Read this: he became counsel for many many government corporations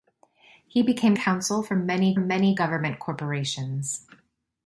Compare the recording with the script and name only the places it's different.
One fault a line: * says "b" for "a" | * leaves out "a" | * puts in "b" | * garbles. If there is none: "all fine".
all fine